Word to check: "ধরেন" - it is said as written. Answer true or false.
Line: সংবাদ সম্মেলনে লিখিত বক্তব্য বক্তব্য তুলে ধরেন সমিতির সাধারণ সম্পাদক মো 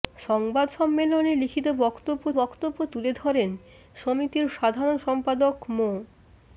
true